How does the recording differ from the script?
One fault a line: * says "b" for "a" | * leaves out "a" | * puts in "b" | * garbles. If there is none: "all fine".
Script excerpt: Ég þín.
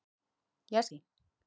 all fine